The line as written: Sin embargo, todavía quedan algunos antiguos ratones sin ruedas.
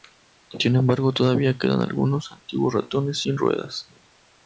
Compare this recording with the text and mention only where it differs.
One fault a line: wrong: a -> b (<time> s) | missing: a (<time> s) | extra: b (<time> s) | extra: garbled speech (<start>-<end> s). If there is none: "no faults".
no faults